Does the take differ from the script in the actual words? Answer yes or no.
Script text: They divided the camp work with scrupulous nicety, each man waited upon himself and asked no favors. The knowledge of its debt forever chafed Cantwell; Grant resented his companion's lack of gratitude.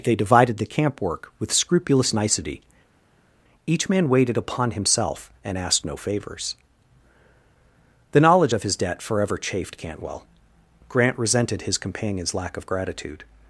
yes